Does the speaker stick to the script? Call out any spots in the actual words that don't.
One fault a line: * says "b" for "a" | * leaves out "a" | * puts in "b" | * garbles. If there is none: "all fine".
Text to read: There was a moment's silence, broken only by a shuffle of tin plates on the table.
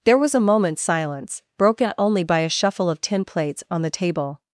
all fine